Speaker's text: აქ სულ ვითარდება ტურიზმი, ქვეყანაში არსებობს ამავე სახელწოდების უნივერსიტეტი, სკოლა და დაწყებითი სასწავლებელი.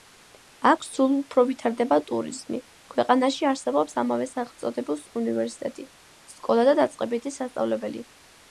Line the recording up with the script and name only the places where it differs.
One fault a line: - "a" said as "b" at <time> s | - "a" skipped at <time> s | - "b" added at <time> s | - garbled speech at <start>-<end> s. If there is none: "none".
- "უფრო" added at 1.2 s